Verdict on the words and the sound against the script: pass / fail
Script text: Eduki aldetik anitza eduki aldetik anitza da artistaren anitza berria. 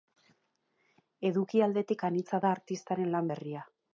fail